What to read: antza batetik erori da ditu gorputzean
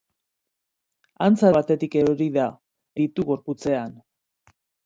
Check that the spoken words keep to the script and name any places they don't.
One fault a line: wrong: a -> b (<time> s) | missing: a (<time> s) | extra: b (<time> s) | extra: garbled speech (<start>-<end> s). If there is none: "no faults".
no faults